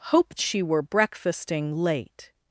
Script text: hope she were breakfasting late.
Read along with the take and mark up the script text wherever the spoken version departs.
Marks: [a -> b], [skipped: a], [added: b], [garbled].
hope she were breakfasting late.